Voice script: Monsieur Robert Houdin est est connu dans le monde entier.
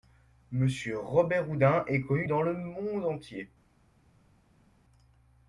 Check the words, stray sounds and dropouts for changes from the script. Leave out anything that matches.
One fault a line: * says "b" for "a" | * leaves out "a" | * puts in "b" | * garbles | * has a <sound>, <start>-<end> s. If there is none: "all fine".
* leaves out "est"